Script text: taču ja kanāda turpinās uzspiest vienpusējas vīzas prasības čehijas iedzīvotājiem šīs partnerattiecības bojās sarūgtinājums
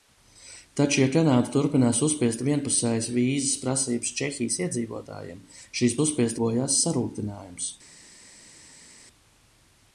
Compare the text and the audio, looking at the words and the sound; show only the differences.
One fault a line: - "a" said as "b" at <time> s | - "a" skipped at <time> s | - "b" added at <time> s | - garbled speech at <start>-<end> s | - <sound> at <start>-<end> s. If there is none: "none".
- "partnerattiecības" said as "uzspiest" at 6.0 s